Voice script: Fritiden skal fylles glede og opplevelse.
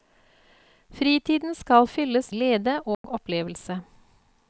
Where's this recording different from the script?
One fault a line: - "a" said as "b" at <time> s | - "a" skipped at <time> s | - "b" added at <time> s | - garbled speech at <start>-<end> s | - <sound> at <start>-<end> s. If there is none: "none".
- dropout at 2.9-3.0 s